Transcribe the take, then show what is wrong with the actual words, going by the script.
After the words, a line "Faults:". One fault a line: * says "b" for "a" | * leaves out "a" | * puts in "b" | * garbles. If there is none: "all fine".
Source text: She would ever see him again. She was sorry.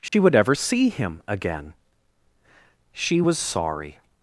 She would ever see him again. She was sorry.
Faults:
all fine